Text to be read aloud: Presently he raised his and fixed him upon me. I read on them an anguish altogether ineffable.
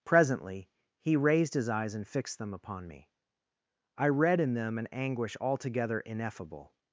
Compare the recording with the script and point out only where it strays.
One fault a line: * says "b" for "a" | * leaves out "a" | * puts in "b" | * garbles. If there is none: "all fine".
* puts in "eyes"
* says "them" for "him"
* says "in" for "on"